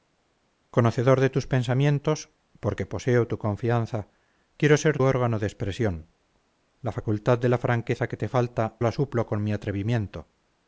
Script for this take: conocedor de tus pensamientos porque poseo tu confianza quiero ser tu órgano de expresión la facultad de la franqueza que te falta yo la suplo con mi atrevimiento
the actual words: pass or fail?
fail